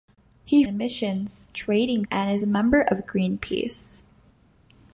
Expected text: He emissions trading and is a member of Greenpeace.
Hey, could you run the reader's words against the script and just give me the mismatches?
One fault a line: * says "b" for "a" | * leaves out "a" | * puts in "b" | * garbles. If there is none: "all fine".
all fine